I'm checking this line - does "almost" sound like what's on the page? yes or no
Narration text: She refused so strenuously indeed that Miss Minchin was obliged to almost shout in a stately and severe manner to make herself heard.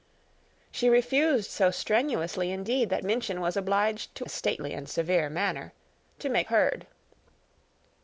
no